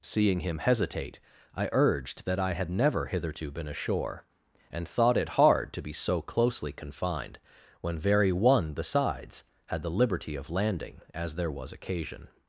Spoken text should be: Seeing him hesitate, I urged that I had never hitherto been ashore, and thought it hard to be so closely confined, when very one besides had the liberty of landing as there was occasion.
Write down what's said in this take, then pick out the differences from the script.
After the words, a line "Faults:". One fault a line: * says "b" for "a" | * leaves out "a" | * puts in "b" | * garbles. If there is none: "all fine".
Seeing him hesitate, I urged that I had never hitherto been ashore, and thought it hard to be so closely confined, when very one besides had the liberty of landing as there was occasion.
Faults:
all fine